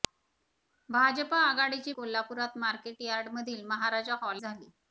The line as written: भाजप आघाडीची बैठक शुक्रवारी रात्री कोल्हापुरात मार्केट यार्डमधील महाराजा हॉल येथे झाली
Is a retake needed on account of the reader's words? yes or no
yes